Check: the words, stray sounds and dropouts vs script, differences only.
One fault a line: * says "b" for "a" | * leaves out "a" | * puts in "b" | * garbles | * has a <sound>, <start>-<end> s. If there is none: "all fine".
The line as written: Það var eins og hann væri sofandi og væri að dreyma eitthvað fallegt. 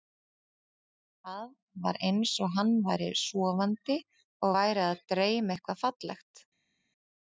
all fine